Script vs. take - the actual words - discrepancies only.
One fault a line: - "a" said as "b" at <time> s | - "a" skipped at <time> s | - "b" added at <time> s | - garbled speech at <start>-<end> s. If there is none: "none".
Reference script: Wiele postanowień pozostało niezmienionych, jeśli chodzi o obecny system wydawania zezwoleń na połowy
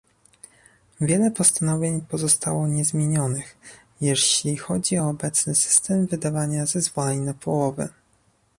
none